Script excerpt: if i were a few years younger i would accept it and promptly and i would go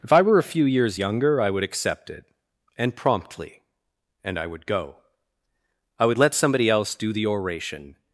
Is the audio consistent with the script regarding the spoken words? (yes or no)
no